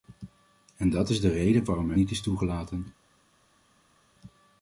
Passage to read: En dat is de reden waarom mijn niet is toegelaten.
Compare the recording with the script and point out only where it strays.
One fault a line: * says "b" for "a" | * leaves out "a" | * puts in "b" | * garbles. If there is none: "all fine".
all fine